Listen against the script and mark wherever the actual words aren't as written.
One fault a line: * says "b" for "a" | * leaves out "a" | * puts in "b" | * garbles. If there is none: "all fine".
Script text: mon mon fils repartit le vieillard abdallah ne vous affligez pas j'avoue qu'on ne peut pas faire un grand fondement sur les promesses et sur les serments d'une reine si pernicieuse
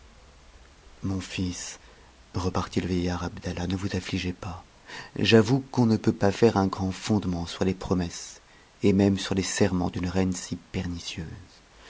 * leaves out "mon"
* puts in "même"